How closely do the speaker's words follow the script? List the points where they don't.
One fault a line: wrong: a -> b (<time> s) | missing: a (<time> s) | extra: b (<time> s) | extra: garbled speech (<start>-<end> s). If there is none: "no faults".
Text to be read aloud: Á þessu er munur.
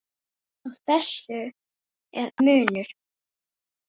no faults